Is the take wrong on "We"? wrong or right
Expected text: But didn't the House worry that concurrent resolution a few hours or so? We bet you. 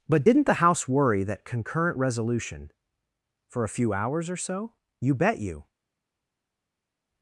wrong